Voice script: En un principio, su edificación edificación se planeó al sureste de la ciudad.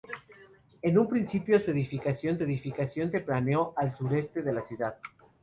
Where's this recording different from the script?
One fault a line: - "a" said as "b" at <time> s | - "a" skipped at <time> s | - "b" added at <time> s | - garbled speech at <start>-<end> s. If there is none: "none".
none